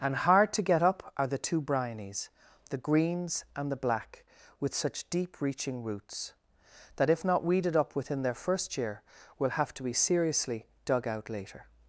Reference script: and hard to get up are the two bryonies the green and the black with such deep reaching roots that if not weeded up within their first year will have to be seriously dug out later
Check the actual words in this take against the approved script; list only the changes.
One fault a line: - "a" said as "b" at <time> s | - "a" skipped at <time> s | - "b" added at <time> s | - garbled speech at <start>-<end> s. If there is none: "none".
- "green" said as "greens" at 2.8 s